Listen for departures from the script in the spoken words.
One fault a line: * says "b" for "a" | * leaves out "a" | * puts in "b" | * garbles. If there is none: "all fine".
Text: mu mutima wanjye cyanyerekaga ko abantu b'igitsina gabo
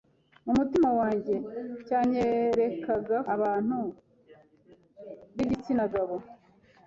* leaves out "ko"